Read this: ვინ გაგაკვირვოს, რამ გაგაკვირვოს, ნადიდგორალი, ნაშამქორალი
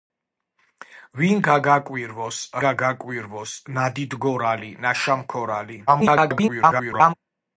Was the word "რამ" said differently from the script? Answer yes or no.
yes